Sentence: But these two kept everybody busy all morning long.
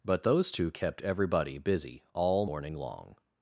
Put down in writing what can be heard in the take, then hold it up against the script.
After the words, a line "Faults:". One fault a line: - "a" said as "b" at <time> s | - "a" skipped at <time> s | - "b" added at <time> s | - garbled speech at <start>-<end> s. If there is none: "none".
But those two kept everybody busy all morning long.
Faults:
- "these" said as "those" at 0.2 s